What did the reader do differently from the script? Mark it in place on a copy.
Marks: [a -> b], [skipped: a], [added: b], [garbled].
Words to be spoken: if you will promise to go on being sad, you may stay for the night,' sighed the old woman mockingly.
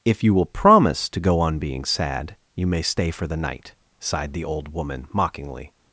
if you will promise to go on being sad, you may stay for the night,' sighed the old woman mockingly.